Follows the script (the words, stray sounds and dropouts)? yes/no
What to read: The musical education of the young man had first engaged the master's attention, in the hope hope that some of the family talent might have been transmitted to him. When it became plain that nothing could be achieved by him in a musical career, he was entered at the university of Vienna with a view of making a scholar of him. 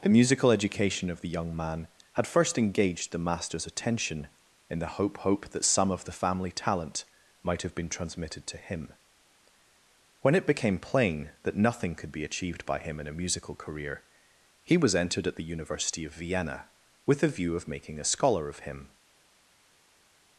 yes